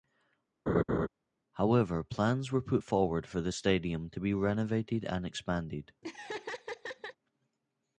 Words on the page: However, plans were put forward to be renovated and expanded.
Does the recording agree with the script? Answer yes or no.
no